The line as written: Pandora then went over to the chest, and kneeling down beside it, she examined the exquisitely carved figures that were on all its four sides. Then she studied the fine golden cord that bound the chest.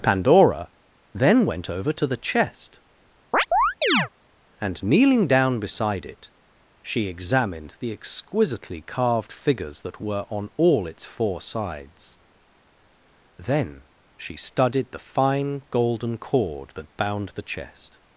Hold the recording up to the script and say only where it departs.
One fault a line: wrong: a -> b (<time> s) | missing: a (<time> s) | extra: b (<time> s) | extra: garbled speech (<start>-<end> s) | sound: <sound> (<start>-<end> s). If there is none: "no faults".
sound: chirp (3.3-4.1 s)